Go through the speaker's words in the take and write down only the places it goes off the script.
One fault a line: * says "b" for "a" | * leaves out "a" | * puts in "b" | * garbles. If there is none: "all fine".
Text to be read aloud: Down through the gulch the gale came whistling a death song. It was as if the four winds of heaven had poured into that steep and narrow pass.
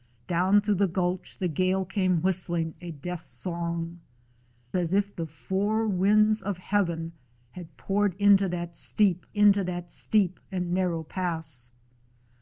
* leaves out "It was"
* puts in "into that steep"